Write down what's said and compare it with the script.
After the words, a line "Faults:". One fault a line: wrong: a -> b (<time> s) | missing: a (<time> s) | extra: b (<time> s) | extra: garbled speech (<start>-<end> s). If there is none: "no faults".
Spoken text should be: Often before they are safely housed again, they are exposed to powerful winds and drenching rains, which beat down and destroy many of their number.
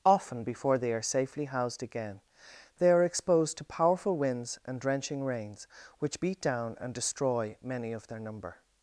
Often before they are safely housed again, they are exposed to powerful winds and drenching rains, which beat down and destroy many of their number.
Faults:
no faults